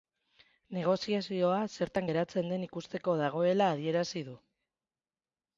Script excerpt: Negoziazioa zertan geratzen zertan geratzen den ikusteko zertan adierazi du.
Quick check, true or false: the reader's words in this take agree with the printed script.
false